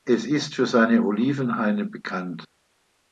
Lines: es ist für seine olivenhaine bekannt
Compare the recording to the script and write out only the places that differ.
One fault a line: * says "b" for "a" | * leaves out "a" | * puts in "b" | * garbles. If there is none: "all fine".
all fine